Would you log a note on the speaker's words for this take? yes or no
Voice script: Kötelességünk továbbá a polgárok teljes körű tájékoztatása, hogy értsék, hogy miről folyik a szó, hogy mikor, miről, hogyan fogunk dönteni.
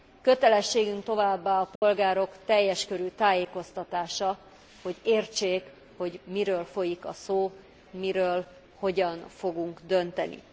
yes